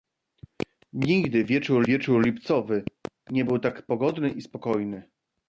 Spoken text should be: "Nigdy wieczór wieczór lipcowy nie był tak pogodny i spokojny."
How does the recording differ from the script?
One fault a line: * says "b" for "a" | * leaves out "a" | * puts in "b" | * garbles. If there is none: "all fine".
all fine